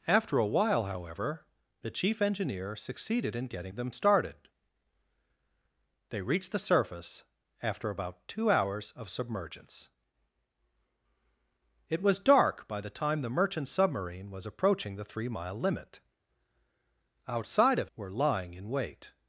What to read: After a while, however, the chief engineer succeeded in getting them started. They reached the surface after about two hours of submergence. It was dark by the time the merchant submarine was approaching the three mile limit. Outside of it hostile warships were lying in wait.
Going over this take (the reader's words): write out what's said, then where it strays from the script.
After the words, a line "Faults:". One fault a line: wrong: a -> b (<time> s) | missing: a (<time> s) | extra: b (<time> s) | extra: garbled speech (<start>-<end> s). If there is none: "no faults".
After a while, however, the chief engineer succeeded in getting them started. They reached the surface after about two hours of submergence. It was dark by the time the merchant submarine was approaching the three mile limit. Outside of were lying in wait.
Faults:
missing: it hostile warships (17.9 s)